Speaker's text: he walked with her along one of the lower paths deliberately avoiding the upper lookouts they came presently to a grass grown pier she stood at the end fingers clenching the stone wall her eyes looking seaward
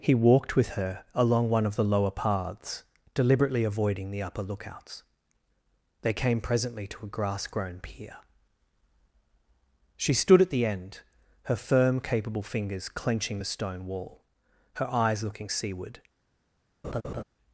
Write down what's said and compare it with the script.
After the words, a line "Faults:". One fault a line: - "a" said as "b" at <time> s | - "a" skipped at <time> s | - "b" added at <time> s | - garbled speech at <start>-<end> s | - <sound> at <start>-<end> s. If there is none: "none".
he walked with her along one of the lower paths deliberately avoiding the upper lookouts they came presently to a grass grown pier she stood at the end her firm capable fingers clenching the stone wall her eyes looking seaward
Faults:
- "her firm capable" added at 11.4 s
- laugh at 16.8-17.2 s